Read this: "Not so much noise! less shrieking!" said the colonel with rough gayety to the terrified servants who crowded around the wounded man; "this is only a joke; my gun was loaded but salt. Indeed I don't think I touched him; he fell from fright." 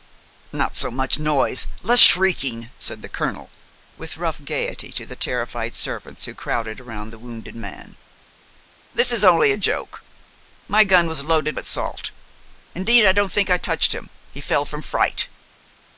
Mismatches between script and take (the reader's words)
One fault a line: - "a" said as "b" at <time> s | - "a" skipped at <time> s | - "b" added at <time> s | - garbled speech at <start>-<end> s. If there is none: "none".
none